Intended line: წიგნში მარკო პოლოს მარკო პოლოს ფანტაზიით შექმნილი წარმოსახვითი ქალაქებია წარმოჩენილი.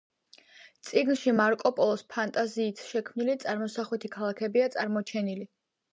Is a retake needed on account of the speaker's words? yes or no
yes